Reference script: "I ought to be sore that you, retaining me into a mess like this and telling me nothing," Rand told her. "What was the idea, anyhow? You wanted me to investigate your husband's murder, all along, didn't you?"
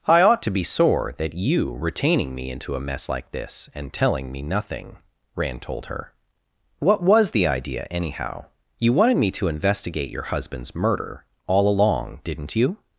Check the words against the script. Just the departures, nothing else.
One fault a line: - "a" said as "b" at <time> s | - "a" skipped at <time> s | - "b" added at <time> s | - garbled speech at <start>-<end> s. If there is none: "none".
none